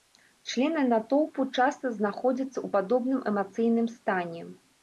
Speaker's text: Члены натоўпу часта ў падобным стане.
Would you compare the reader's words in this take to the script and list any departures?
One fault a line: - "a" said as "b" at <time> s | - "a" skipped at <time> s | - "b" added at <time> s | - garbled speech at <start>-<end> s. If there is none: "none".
- "знаходзяцца" added at 2.0 s
- "эмацыйным" added at 3.3 s